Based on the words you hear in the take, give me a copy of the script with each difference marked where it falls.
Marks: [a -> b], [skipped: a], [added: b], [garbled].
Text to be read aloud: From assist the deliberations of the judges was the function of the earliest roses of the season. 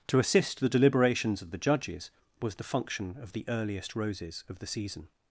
[From -> To] assist the deliberations of the judges was the function of the earliest roses of the season.